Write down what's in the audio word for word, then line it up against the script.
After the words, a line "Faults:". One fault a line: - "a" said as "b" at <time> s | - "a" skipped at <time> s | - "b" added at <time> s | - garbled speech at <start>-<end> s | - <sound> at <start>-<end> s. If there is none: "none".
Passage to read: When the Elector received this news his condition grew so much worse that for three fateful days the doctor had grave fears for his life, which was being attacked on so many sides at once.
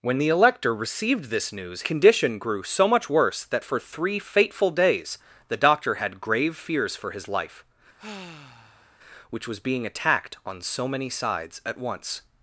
When the Elector received this news condition grew so much worse that for three fateful days the doctor had grave fears for his life, which was being attacked on so many sides at once.
Faults:
- "his" skipped at 1.8 s
- sigh at 8.0-9.0 s